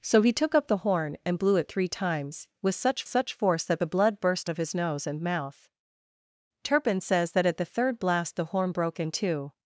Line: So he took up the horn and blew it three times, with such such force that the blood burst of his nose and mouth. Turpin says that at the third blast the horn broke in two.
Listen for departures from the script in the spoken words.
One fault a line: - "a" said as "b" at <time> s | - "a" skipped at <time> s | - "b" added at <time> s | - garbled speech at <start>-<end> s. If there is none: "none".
none